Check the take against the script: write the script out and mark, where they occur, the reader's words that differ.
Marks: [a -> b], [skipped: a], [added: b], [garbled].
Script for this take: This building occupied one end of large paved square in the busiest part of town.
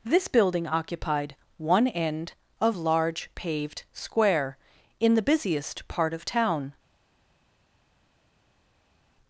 This building occupied one end of large paved square in the busiest part of town.